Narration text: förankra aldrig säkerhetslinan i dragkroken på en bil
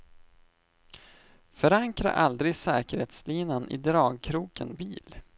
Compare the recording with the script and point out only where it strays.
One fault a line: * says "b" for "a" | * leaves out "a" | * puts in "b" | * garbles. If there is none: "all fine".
* leaves out "på en"